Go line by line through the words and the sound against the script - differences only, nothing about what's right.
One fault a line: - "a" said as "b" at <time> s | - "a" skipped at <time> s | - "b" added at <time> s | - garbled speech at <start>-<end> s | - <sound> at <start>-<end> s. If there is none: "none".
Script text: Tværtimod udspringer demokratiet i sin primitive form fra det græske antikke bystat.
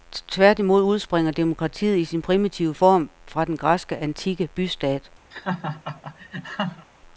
- "det" said as "den" at 3.4 s
- laugh at 5.3-6.9 s